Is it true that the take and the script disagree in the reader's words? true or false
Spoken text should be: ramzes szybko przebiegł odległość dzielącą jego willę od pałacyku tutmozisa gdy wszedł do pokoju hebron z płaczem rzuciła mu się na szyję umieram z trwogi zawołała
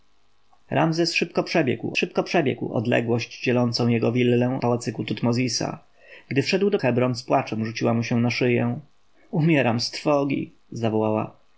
true